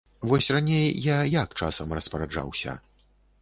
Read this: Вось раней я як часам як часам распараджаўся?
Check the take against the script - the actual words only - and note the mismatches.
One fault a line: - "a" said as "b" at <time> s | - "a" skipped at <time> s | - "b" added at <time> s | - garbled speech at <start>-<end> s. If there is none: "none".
- "як часам" skipped at 2.0 s